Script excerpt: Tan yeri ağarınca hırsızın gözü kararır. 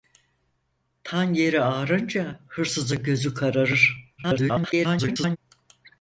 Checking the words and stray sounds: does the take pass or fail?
fail